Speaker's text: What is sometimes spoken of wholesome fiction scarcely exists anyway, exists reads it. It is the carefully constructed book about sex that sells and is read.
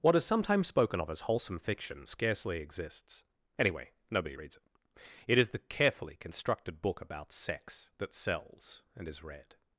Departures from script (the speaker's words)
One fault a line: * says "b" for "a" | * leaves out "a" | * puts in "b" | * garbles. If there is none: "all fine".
* puts in "as"
* says "nobody" for "exists"